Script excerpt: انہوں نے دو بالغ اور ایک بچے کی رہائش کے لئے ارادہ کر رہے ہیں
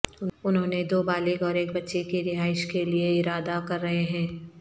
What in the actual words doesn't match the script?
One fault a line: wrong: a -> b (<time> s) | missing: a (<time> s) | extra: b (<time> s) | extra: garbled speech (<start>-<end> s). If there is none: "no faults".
no faults